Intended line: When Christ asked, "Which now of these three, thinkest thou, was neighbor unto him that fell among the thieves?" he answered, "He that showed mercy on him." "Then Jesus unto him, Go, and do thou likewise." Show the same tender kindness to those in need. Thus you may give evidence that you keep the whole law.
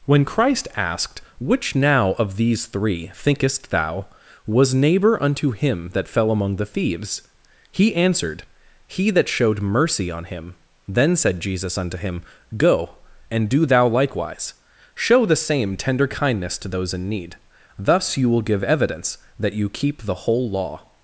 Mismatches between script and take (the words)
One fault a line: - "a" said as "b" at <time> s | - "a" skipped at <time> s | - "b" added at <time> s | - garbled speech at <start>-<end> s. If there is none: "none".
- "said" added at 11.2 s
- "may" said as "will" at 18.3 s